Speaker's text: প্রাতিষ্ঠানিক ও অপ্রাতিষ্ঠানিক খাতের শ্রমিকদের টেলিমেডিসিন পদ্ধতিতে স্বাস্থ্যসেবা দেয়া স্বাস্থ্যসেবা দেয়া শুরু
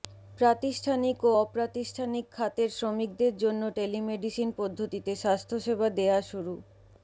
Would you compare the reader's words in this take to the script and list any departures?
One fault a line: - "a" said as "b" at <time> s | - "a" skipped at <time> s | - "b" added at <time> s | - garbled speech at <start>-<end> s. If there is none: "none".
- "জন্য" added at 3.4 s
- "স্বাস্থ্যসেবা দেয়া" skipped at 6.2 s